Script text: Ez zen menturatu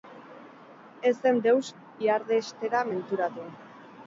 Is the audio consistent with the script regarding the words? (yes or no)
no